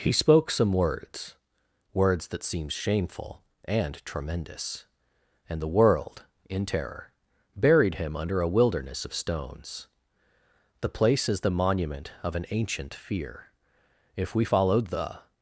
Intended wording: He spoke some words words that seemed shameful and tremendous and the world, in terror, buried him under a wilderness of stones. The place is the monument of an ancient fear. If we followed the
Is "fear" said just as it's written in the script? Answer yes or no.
yes